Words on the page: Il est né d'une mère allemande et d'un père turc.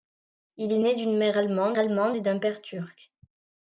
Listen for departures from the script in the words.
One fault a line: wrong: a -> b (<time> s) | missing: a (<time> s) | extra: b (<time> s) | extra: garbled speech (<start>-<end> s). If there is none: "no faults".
extra: allemande (1.8 s)